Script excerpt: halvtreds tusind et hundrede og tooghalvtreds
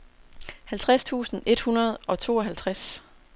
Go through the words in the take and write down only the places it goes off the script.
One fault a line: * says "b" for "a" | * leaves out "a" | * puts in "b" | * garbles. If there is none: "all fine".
all fine